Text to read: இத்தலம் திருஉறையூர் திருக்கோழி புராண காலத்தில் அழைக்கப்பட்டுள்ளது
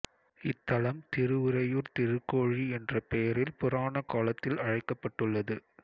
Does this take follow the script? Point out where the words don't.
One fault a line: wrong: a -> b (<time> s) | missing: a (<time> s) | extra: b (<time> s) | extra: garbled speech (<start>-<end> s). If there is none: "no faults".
extra: என்ற பெயரில் (2.7 s)